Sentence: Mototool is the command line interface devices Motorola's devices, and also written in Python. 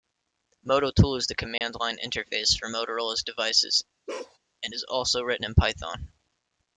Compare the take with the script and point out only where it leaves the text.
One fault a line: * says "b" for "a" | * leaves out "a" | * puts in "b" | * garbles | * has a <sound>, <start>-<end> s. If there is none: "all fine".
* has a dropout, 1.6-1.6 s
* says "for" for "devices"
* has a bark, 4.1-4.4 s
* puts in "is"